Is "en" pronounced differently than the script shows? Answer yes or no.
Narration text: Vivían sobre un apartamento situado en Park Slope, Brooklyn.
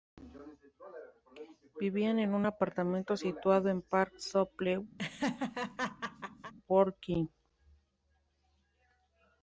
no